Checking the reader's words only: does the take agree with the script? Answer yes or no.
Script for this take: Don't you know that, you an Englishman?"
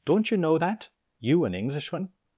yes